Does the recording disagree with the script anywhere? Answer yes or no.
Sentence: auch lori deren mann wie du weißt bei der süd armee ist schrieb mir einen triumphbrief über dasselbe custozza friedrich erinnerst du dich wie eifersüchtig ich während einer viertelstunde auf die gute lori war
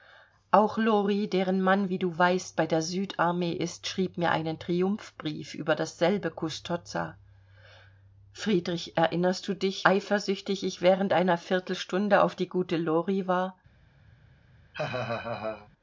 yes